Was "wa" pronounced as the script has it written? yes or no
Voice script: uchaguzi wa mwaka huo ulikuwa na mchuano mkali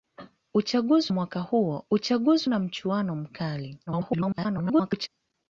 no